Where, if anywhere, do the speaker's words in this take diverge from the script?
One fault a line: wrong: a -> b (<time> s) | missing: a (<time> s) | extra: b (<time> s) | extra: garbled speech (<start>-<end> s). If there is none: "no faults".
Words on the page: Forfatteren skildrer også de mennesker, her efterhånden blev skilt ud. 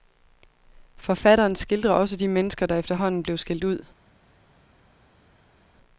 wrong: her -> der (2.7 s)